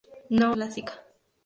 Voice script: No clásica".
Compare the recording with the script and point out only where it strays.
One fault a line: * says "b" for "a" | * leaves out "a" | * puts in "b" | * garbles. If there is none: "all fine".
all fine